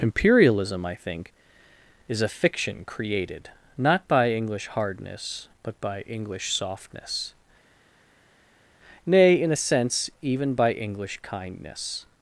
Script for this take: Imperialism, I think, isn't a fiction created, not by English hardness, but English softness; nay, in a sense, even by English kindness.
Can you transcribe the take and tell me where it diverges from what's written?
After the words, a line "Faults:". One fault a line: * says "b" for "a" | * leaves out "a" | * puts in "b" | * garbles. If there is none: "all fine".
Imperialism, I think, is a fiction created, not by English hardness, but by English softness; nay, in a sense, even by English kindness.
Faults:
* says "is" for "isn't"
* puts in "by"